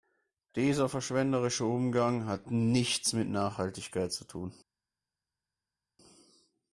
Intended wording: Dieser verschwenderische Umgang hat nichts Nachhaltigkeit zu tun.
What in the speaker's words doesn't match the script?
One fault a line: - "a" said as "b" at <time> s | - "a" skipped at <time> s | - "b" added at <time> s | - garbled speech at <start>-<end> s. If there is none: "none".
- "mit" added at 3.1 s